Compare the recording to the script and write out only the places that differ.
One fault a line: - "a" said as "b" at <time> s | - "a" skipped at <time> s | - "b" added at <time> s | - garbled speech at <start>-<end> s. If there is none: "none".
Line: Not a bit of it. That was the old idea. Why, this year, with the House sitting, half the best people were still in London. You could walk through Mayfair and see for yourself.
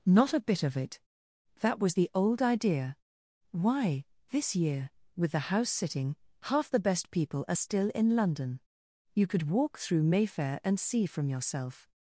- "were" said as "are" at 7.5 s
- "for" said as "from" at 11.1 s